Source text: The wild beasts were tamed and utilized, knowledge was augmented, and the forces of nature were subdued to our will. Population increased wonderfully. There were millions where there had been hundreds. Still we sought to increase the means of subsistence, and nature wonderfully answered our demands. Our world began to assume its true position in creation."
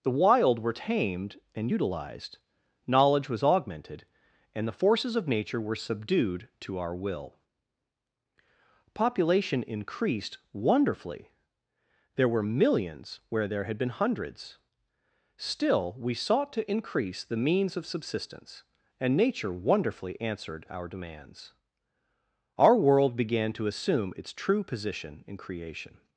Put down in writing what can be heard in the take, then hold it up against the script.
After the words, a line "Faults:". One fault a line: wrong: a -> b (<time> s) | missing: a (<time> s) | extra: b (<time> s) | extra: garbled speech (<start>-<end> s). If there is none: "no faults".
The wild were tamed and utilized, knowledge was augmented, and the forces of nature were subdued to our will. Population increased wonderfully. There were millions where there had been hundreds. Still we sought to increase the means of subsistence, and nature wonderfully answered our demands. Our world began to assume its true position in creation."
Faults:
missing: beasts (0.6 s)